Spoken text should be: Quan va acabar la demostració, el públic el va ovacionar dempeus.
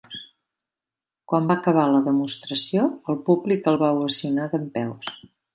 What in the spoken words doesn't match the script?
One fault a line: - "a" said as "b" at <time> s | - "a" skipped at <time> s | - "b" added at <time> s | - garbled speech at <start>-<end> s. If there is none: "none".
none